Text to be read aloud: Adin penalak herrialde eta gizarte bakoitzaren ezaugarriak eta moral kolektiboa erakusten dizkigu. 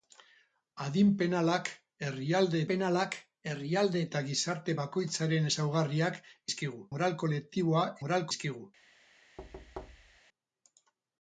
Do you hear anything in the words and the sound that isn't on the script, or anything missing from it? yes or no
yes